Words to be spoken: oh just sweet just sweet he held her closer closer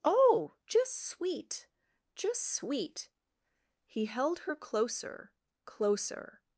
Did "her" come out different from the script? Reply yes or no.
no